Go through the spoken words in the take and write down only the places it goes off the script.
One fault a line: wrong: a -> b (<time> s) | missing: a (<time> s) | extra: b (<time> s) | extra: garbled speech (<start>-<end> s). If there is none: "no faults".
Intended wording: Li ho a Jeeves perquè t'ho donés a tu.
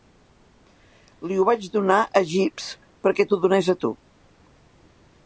extra: vaig donar (1.5 s)